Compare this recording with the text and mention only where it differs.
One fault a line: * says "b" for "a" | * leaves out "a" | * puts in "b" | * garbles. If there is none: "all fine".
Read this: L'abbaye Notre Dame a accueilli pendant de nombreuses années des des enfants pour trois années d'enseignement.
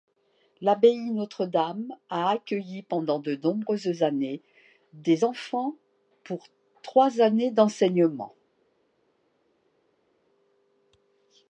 * leaves out "des"